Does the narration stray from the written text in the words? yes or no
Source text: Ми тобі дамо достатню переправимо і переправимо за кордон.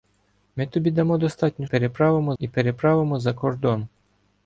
no